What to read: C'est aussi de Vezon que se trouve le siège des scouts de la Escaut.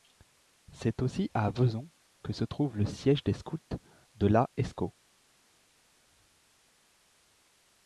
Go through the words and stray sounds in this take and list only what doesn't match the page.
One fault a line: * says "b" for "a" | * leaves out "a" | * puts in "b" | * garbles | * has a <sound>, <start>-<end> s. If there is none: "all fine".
* says "à" for "de"